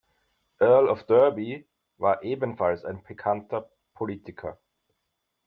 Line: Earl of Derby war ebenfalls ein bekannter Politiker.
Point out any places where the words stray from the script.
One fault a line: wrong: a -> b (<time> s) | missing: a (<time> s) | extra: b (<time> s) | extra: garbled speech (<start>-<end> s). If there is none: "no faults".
no faults